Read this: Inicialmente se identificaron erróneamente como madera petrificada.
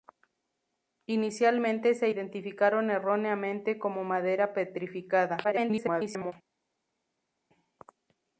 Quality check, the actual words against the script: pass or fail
fail